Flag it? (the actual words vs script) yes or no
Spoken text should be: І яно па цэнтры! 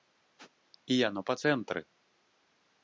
no